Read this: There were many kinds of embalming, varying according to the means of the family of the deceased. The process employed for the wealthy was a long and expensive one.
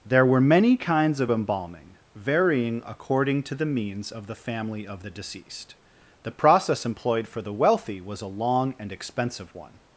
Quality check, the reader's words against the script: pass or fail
pass